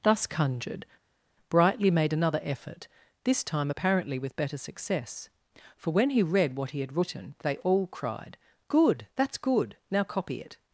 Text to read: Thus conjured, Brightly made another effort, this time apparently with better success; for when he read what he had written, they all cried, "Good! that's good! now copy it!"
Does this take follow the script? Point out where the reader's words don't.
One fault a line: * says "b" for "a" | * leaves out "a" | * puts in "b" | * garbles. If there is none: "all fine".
all fine